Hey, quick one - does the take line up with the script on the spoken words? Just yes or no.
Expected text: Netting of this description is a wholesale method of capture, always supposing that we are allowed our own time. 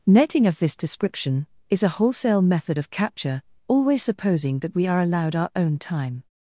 yes